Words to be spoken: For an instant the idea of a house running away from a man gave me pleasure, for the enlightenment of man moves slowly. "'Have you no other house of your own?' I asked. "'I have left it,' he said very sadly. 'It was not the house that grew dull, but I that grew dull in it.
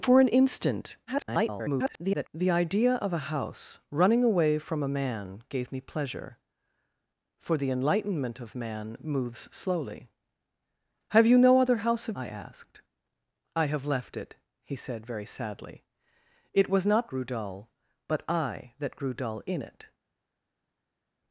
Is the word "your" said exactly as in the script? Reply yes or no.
no